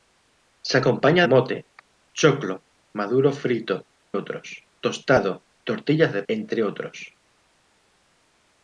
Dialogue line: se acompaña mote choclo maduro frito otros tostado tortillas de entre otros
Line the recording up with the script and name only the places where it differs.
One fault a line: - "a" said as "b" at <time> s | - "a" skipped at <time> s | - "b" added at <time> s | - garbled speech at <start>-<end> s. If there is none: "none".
none